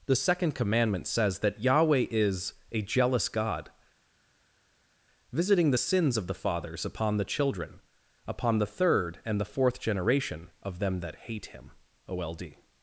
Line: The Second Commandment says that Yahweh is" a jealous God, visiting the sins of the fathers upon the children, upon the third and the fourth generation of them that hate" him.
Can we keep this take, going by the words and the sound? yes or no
no